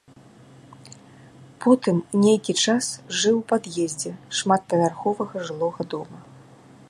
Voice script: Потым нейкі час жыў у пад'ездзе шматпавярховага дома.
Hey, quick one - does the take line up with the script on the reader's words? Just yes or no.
no